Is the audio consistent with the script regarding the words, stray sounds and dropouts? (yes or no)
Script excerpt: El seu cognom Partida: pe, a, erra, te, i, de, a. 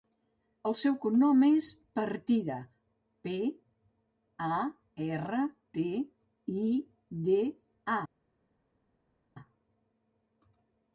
no